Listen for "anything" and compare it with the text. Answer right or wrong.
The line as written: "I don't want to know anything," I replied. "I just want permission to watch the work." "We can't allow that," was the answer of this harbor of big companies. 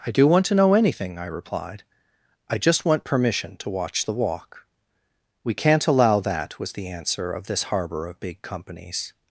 right